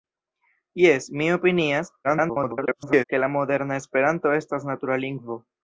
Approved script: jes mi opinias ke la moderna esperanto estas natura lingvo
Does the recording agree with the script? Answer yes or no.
no